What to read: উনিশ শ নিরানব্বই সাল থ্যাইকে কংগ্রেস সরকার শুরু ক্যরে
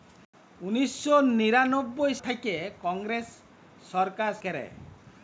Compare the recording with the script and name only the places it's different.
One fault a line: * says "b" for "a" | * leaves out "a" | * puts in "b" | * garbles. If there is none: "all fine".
* leaves out "সাল"
* leaves out "শুরু"